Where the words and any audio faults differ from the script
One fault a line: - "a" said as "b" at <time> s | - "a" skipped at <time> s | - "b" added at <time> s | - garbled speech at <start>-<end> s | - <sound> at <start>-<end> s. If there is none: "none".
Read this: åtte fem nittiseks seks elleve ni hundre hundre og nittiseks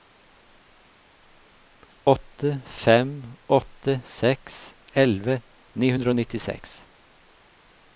- "nittiseks" said as "åtte" at 3.6 s
- "hundre" skipped at 6.2 s